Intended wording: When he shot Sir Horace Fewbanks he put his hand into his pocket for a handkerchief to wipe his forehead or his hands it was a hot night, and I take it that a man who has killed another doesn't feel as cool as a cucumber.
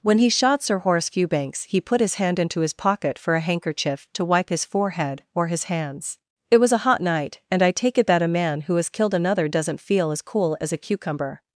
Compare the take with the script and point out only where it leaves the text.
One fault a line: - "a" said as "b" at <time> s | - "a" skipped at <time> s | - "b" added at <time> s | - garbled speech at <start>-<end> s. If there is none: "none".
none